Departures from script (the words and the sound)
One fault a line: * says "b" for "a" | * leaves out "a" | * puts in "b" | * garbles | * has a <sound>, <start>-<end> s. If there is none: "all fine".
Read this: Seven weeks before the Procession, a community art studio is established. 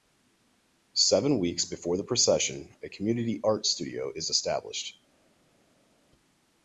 all fine